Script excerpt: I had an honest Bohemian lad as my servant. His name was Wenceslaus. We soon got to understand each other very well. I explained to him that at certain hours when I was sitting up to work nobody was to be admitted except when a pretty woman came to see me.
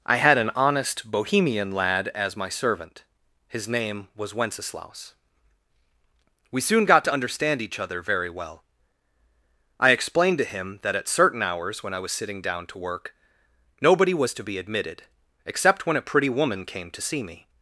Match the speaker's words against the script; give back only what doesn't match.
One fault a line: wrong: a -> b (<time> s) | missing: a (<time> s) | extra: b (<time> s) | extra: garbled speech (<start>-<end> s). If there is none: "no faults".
wrong: up -> down (12.4 s)